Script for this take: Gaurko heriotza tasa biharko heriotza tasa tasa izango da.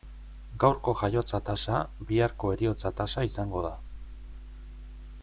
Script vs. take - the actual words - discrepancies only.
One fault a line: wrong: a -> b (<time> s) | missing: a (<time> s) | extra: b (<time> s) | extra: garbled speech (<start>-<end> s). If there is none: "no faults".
wrong: heriotza -> jaiotza (1.0 s)
missing: tasa (3.3 s)